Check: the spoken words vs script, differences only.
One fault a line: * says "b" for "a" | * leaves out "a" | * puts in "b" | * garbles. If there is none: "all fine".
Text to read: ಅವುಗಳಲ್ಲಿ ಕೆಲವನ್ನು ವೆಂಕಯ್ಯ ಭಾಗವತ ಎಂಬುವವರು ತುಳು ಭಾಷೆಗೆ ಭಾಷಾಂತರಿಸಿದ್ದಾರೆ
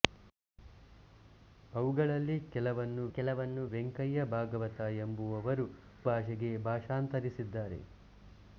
* puts in "ಕೆಲವನ್ನು"
* leaves out "ತುಳು"